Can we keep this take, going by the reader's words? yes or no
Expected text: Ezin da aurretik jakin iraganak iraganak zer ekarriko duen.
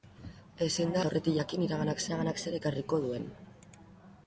yes